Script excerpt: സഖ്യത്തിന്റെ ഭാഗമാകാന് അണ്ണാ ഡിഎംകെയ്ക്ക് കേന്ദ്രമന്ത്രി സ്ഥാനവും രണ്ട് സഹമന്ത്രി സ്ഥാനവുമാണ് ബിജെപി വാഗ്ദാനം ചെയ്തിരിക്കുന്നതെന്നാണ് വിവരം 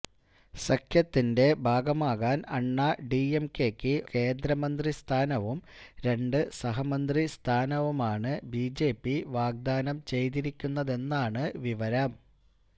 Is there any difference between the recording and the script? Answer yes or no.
no